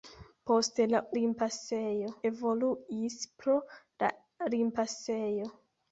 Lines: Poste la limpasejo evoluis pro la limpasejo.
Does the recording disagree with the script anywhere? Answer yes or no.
no